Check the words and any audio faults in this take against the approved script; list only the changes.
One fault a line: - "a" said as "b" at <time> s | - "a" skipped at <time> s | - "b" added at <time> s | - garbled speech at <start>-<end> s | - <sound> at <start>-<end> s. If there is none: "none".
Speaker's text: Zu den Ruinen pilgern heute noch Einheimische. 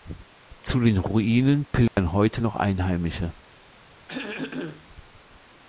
- dropout at 1.9-2.0 s
- throat clearing at 4.1-4.9 s